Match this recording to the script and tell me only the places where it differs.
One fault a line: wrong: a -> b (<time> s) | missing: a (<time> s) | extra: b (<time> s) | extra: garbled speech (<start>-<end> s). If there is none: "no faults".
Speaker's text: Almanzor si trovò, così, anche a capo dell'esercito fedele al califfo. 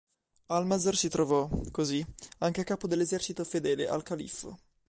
no faults